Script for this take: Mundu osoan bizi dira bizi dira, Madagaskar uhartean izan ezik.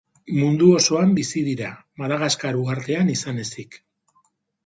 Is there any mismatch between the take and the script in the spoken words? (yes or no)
yes